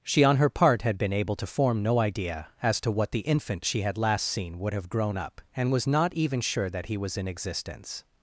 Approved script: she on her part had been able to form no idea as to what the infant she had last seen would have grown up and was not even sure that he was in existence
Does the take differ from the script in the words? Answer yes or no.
no